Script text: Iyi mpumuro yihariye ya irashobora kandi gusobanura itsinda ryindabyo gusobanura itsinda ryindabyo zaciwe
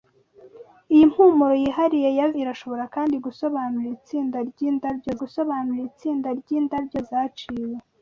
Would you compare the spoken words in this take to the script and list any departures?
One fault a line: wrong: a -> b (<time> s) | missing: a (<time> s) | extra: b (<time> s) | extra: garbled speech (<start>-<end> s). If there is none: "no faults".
no faults